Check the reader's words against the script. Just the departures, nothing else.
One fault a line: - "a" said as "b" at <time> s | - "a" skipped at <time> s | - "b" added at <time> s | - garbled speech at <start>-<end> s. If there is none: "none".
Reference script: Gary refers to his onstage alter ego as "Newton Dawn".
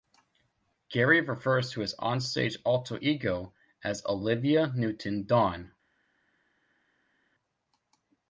- "Olivia" added at 4.0 s